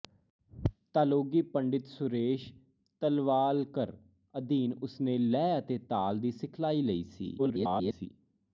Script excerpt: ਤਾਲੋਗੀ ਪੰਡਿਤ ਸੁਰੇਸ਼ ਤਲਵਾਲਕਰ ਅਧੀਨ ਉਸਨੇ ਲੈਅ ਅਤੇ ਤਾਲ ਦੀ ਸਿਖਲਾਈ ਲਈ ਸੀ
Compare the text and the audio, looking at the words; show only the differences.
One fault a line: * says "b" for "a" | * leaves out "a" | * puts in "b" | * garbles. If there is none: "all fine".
* garbles